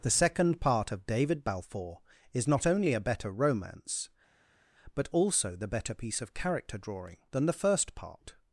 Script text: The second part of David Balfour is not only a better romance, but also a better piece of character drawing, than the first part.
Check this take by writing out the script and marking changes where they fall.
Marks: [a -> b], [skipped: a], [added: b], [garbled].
The second part of David Balfour is not only a better romance, but also [a -> the] better piece of character drawing, than the first part.